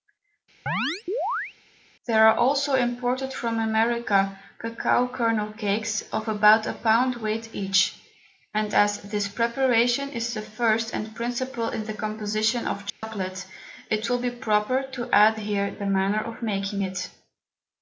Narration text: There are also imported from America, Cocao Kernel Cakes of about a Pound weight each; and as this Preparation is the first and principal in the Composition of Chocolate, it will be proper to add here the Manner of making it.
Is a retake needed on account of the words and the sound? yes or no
yes